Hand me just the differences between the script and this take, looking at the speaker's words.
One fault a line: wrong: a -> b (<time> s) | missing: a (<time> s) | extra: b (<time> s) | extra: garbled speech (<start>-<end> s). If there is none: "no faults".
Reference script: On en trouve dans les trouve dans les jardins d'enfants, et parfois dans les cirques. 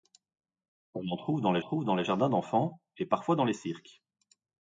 no faults